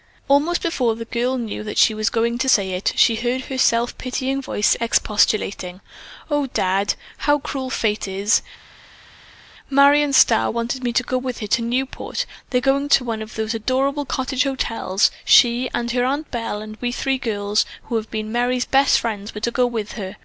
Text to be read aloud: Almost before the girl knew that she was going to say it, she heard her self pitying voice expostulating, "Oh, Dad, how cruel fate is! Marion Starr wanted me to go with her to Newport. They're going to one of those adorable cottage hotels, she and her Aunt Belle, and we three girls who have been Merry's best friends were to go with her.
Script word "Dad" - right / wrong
right